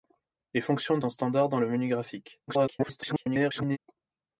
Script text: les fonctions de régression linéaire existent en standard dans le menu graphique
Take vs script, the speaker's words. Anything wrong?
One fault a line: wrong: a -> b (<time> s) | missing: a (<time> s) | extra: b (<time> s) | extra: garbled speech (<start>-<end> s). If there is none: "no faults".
missing: régression linéaire existent (1.1 s)
extra: garbled speech (2.5-3.8 s)